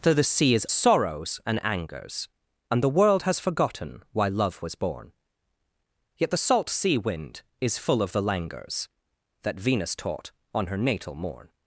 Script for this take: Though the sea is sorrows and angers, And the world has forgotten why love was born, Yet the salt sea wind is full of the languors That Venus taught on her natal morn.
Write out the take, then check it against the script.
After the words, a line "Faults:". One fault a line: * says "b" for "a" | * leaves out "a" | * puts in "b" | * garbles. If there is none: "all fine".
Though the sea is sorrows and angers, And the world has forgotten why love was born, Yet the salt sea wind is full of the languors That Venus taught on her natal morn.
Faults:
all fine